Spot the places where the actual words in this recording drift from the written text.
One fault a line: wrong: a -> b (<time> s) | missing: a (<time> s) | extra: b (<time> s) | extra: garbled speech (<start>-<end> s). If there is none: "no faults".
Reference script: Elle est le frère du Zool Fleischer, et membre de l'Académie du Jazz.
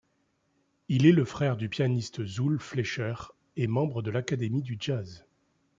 wrong: Elle -> Il (0.9 s)
extra: pianiste (1.7 s)